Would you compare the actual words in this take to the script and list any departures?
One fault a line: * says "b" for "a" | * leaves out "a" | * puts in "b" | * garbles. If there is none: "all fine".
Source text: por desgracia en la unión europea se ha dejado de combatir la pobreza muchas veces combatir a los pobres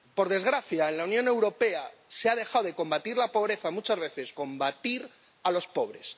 all fine